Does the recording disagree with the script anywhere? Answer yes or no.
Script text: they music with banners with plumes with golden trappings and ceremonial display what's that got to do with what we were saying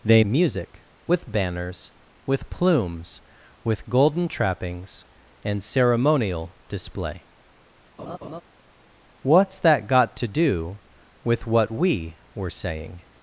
no